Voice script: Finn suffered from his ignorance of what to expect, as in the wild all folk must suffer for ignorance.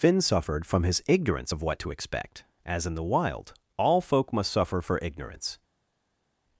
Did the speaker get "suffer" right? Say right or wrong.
right